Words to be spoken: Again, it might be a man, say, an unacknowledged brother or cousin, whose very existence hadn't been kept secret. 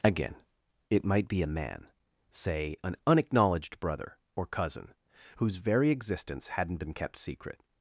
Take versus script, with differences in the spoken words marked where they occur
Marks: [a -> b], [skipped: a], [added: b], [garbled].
Again, it might be a man, say, an unacknowledged brother or cousin, whose very existence hadn't been kept secret.